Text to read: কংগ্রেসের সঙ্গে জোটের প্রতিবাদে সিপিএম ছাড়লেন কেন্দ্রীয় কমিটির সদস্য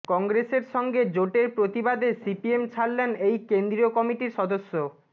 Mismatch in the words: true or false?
true